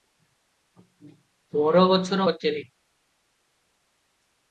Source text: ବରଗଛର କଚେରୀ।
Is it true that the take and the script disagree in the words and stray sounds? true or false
false